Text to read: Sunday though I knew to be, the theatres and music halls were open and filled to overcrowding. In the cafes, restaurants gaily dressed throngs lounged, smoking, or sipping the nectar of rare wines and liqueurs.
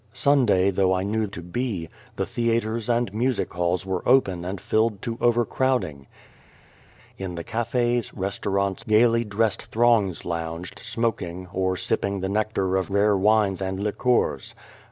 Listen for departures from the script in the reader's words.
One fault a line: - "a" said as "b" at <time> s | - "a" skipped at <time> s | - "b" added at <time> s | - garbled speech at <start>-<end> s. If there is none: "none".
none